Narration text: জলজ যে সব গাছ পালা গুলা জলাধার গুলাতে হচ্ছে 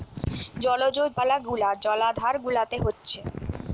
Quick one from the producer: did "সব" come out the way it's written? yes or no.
no